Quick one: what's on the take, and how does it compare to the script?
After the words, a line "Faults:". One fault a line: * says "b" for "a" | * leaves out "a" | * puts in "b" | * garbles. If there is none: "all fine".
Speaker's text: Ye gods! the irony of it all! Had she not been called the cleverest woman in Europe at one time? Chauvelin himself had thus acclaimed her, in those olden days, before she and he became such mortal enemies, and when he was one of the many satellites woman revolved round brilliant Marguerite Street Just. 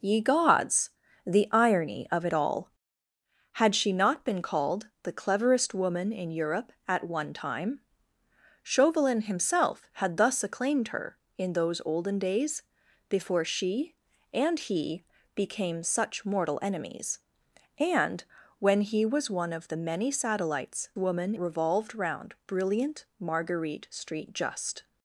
Ye gods! the irony of it all! Had she not been called the cleverest woman in Europe at one time? Chauvelin himself had thus acclaimed her, in those olden days, before she and he became such mortal enemies, and when he was one of the many satellites woman revolved round brilliant Marguerite Street Just.
Faults:
all fine